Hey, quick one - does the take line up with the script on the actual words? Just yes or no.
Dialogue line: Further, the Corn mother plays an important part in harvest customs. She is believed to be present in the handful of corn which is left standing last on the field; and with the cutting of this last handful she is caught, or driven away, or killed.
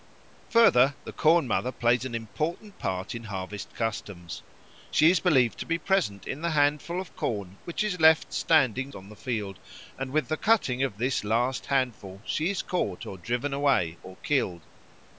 no